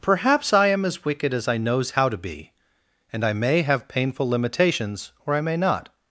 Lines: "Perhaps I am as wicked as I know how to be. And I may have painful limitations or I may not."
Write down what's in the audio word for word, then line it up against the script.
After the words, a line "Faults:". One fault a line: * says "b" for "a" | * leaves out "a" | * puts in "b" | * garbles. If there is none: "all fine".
"Perhaps I am as wicked as I knows how to be. And I may have painful limitations or I may not."
Faults:
* says "knows" for "know"